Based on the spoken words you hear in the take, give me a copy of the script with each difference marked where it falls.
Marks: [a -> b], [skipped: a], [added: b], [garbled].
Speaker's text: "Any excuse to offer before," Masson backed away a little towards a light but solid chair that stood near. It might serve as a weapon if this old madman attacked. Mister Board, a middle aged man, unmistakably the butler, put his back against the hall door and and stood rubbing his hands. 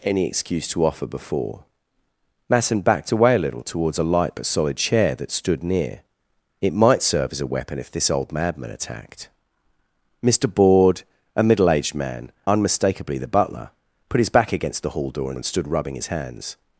"Any excuse to offer before," Masson backed away a little towards a light but solid chair that stood near. It might serve as a weapon if this old madman attacked. Mister Board, a middle aged man, unmistakably the butler, put his back against the hall door and and stood rubbing his hands.